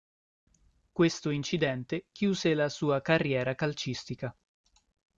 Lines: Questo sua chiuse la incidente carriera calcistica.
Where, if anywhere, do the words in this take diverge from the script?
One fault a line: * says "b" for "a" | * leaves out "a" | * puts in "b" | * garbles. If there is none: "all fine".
* says "incidente" for "sua"
* says "sua" for "incidente"